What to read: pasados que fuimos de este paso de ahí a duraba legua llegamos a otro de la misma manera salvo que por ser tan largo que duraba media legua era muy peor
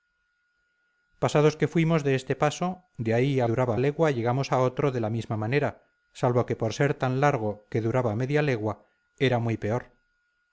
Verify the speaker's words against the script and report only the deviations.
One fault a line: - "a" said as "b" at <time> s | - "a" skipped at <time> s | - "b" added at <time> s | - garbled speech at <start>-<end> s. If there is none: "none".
none